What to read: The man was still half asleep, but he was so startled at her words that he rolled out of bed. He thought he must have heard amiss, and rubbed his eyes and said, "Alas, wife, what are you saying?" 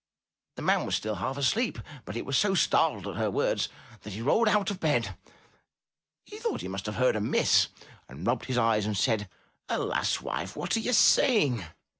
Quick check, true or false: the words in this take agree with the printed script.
true